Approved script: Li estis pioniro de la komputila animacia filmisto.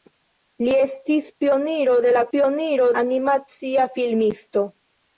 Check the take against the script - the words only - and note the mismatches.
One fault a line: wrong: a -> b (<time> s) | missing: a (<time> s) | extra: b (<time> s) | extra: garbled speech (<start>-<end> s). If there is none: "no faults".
wrong: komputila -> pioniro (2.3 s)